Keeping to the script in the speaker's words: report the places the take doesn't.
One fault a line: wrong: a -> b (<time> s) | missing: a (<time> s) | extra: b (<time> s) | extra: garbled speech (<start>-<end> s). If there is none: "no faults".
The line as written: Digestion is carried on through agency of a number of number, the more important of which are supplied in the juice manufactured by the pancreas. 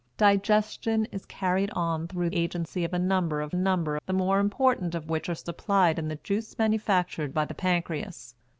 no faults